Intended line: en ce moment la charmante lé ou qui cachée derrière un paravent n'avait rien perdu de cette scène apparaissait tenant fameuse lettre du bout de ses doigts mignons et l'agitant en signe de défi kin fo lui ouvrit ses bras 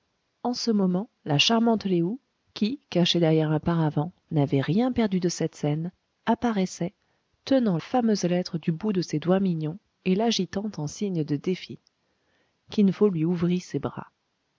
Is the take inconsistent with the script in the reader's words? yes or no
no